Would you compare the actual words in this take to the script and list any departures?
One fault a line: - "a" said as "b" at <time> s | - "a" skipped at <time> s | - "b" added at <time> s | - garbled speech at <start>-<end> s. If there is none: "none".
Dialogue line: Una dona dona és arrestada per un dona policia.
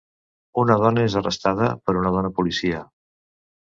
- "dona" skipped at 1.1 s
- "un" said as "una" at 2.0 s